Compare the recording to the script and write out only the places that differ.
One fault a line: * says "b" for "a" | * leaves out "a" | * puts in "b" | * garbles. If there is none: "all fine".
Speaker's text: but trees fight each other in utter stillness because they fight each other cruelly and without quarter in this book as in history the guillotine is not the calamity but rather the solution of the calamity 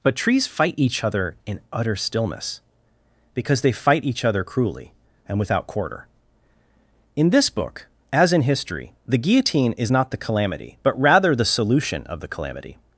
all fine